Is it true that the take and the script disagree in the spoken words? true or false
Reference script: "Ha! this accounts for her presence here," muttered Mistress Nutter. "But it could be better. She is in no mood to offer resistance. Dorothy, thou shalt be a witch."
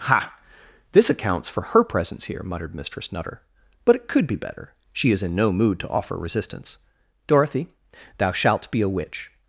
false